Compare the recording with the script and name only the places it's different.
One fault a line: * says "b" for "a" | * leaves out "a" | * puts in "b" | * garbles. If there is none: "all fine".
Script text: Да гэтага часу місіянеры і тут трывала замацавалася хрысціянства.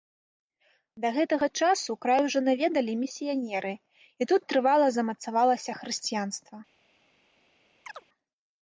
* puts in "край ужо наведалі"